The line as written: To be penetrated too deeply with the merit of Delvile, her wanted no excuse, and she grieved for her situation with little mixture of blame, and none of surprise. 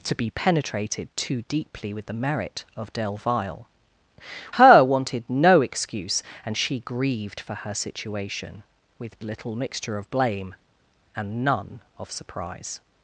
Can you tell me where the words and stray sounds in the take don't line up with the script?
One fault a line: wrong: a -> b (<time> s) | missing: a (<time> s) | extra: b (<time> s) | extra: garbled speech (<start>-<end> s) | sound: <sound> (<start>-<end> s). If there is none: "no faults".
no faults